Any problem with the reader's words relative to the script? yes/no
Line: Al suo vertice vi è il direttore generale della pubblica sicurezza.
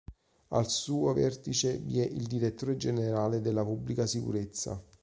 no